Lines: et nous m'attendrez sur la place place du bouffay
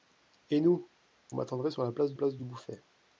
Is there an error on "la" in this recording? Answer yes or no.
no